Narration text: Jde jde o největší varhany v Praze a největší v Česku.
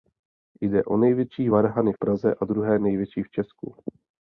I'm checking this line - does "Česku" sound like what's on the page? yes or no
yes